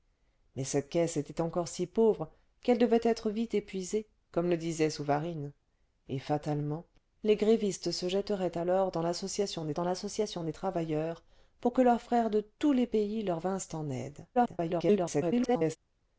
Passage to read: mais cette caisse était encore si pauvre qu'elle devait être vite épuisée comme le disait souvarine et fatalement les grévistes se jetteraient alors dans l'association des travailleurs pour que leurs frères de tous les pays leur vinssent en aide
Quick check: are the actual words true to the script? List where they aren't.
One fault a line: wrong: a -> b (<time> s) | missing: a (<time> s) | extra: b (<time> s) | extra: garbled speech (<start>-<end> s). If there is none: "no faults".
extra: dans l'association des (9.7 s)
extra: garbled speech (14.3-15.8 s)